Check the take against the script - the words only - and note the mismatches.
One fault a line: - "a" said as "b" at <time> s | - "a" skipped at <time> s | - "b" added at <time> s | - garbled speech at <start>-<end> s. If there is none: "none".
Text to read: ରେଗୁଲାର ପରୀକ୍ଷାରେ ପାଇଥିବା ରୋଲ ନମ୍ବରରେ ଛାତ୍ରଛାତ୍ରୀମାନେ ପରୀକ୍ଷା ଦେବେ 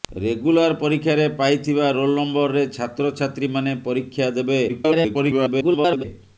- garbled speech at 4.7-6.0 s